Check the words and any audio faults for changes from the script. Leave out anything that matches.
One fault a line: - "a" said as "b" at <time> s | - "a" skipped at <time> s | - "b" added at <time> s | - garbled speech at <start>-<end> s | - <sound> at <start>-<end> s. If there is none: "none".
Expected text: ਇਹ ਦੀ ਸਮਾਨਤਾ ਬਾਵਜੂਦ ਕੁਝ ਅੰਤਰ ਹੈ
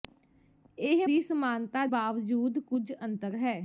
none